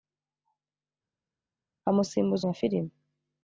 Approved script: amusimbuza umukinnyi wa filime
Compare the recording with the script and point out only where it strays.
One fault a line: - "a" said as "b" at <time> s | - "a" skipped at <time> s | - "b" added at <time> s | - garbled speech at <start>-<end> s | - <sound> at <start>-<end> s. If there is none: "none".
- "umukinnyi" skipped at 2.4 s